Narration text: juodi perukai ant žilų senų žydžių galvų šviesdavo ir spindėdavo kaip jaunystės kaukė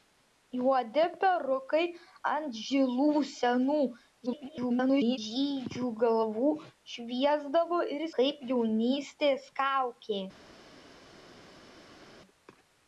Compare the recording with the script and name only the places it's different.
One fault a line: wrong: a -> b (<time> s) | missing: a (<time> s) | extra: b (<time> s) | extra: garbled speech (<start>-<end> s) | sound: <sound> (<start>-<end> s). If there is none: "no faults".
extra: garbled speech (4.3-5.2 s)
missing: spindėdavo (8.0 s)